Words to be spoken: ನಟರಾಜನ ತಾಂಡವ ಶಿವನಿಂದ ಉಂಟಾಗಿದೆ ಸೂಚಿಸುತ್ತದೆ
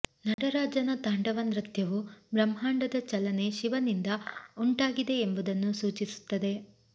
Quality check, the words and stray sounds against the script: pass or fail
fail